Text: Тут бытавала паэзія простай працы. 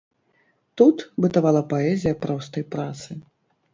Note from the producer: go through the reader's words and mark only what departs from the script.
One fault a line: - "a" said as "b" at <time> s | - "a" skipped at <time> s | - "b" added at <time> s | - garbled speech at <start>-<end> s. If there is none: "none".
none